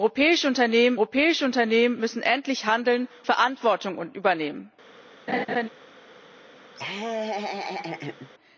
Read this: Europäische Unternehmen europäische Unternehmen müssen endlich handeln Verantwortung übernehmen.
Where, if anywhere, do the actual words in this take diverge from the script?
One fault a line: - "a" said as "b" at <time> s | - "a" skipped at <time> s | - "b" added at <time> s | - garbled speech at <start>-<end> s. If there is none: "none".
none